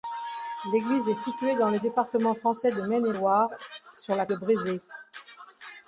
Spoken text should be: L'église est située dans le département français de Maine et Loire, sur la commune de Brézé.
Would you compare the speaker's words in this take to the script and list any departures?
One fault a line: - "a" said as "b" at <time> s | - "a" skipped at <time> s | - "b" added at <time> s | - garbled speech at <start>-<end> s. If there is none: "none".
- "commune" skipped at 4.3 s